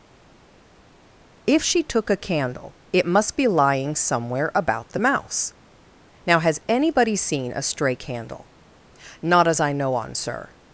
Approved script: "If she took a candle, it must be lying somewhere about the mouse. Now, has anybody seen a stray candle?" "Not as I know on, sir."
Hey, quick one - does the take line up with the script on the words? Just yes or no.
yes